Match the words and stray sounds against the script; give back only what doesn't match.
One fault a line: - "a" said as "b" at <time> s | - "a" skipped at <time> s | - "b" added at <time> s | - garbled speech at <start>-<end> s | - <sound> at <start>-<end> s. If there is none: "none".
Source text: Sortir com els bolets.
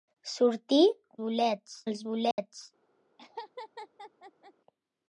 - "com" said as "bolets" at 1.2 s
- dropout at 2.3-2.4 s
- laugh at 3.2-4.5 s